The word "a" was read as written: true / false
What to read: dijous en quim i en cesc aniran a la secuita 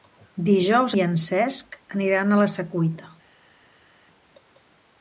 true